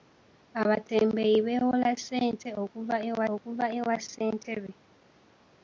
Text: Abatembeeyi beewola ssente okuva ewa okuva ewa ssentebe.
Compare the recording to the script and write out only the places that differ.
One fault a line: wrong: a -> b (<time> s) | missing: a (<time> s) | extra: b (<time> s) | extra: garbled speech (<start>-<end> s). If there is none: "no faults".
no faults